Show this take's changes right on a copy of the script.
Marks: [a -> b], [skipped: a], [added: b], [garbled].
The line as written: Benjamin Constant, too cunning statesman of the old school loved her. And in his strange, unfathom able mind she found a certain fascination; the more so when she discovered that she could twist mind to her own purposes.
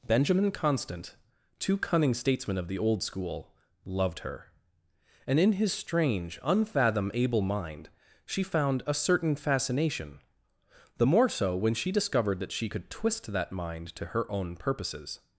Benjamin Constant, too cunning statesman of the old school loved her. And in his strange, unfathom able mind she found a certain fascination; the more so when she discovered that she could twist [added: that] mind to her own purposes.